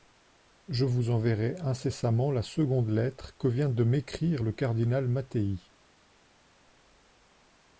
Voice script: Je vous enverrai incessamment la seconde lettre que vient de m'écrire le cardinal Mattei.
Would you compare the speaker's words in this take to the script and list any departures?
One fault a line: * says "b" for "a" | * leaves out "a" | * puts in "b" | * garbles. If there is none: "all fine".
all fine